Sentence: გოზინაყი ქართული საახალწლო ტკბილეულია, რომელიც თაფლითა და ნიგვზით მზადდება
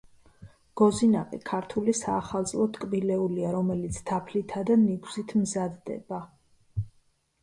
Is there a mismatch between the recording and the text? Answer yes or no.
no